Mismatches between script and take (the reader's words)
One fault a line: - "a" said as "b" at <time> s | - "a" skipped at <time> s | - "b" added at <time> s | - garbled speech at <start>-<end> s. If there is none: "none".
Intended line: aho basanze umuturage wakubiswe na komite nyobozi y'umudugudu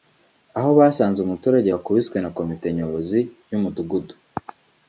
none